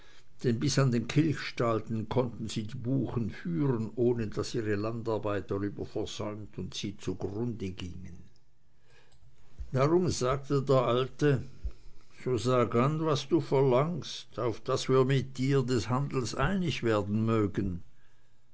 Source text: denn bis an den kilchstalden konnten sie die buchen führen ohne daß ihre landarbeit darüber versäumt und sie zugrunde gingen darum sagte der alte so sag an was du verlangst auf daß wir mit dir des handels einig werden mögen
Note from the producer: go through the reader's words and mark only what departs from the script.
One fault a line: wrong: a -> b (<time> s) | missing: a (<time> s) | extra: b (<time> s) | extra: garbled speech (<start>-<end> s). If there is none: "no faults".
no faults